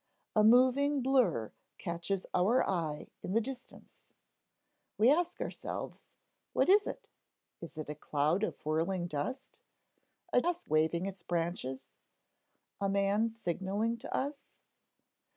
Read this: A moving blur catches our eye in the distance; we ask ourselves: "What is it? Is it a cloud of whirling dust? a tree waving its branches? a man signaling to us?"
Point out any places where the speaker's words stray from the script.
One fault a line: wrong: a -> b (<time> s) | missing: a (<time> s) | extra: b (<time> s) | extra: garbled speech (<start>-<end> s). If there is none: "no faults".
wrong: tree -> ask (10.4 s)